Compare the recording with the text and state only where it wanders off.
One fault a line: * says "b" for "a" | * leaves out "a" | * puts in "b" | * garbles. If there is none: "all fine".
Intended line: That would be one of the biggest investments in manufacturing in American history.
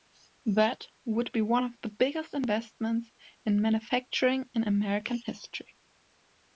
all fine